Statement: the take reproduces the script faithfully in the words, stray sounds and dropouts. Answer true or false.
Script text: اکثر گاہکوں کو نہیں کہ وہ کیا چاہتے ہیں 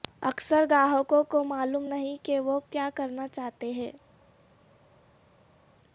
false